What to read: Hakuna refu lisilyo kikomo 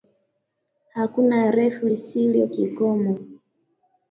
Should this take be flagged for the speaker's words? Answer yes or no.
no